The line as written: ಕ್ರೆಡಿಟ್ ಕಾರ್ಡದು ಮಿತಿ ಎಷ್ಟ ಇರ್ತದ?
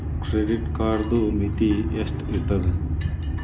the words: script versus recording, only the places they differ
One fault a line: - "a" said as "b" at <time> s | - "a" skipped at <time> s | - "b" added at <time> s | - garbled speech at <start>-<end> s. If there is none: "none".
none